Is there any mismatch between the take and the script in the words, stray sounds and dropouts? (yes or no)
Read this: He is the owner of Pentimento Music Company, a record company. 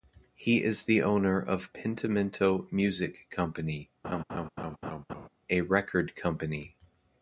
yes